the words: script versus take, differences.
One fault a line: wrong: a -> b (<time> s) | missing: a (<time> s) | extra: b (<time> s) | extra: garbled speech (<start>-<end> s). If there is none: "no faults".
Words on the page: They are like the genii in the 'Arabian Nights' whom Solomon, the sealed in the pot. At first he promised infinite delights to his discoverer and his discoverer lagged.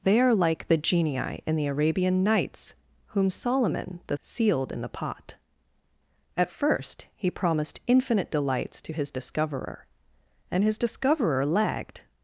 no faults